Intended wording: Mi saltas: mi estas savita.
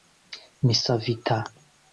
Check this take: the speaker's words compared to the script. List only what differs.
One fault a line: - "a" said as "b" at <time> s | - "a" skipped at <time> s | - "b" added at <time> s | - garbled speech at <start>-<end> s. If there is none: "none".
- "saltas mi estas" skipped at 0.8 s